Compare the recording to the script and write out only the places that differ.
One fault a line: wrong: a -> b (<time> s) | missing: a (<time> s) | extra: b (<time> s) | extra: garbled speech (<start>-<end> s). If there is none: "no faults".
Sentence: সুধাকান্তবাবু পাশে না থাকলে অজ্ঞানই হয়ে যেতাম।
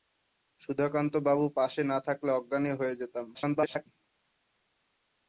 extra: garbled speech (3.3-3.9 s)